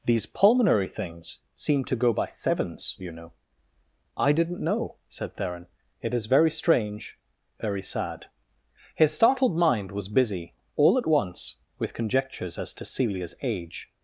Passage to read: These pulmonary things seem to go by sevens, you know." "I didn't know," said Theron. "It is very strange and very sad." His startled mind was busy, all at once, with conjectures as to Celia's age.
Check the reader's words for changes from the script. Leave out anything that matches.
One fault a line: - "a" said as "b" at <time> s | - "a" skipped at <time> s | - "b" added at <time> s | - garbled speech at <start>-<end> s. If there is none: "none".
- "and" skipped at 7.2 s